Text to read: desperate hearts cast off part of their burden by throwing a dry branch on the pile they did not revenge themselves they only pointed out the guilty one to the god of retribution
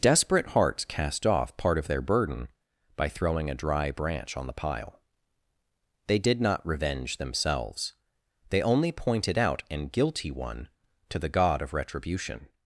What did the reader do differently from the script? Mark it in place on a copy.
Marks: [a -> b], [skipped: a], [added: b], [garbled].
desperate hearts cast off part of their burden by throwing a dry branch on the pile they did not revenge themselves they only pointed out [the -> an] guilty one to the god of retribution